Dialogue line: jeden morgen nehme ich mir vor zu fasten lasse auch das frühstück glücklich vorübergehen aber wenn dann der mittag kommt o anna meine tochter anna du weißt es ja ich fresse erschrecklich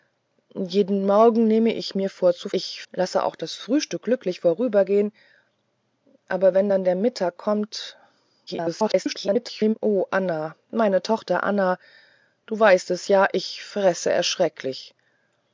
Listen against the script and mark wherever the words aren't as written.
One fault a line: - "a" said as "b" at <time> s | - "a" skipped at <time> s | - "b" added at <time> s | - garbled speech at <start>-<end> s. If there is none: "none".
- "fasten" said as "ich" at 2.5 s
- garbled speech at 8.5-9.7 s